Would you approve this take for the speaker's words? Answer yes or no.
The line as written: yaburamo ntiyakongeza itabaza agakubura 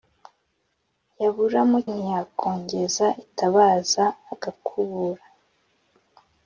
yes